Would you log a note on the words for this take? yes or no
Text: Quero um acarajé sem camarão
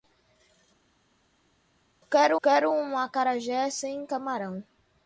yes